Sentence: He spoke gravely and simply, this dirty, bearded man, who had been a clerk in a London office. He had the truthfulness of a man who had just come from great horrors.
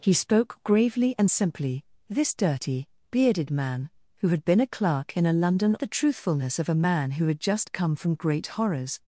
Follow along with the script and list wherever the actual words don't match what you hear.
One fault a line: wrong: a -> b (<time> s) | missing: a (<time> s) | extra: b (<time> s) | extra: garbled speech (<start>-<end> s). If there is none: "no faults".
missing: office He had (5.7 s)